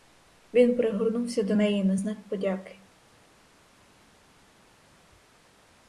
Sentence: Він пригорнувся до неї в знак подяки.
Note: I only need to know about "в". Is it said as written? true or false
false